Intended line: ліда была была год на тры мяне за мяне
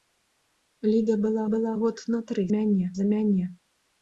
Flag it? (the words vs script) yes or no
no